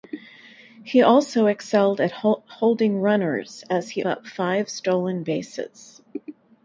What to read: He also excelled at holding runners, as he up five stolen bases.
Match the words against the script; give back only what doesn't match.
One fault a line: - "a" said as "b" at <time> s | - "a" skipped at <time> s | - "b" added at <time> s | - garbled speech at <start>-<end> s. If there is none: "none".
none